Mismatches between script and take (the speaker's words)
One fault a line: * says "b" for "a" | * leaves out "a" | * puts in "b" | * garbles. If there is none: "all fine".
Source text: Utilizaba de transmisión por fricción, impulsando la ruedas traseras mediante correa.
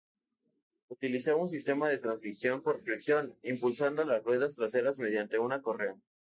* puts in "un sistema"
* says "las" for "la"
* puts in "una"